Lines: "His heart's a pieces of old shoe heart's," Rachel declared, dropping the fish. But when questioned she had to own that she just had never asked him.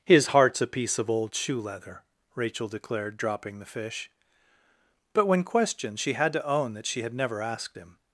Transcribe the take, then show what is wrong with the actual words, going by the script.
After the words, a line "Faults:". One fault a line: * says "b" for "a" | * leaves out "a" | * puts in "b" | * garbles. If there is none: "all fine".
"His heart's a piece of old shoe leather," Rachel declared, dropping the fish. But when questioned she had to own that she had never asked him.
Faults:
* says "piece" for "pieces"
* says "leather" for "heart's"
* leaves out "just"